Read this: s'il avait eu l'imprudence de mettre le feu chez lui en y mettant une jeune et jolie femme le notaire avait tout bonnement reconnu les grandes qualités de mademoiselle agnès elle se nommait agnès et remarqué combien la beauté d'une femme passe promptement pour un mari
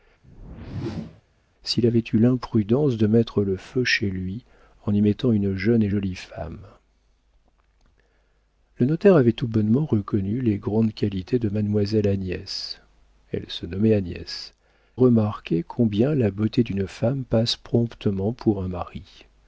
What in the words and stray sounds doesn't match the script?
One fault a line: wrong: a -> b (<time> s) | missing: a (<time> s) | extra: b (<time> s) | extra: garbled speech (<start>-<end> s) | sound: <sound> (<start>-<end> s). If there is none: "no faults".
sound: whoosh (0.2-1.2 s)
missing: et (14.5 s)